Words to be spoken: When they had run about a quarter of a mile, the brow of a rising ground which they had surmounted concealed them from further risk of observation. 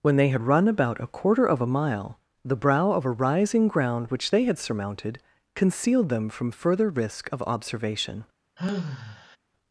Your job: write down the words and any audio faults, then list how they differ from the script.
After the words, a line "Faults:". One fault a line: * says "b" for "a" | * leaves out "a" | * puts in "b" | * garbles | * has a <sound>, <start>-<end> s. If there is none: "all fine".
When they had run about a quarter of a mile, the brow of a rising ground which they had surmounted concealed them from further risk of observation.
Faults:
* has a sigh, 8.6-9.4 s